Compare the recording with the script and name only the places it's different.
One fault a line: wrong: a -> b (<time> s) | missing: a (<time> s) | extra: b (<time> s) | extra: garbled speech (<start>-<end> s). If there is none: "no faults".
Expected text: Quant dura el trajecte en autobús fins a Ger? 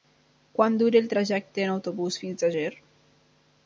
no faults